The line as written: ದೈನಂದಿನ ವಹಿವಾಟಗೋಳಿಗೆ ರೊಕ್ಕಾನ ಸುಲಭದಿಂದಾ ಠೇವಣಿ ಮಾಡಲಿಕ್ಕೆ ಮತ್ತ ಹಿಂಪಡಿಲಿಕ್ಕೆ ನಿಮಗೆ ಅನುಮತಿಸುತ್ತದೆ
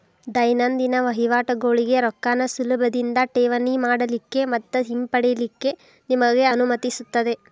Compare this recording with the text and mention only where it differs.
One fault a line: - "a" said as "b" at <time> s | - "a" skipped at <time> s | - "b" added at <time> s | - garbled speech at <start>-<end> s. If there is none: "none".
none